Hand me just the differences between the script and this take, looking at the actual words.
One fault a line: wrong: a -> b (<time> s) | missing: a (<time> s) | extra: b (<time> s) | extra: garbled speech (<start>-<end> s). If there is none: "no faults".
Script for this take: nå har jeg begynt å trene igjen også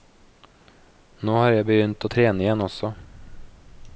no faults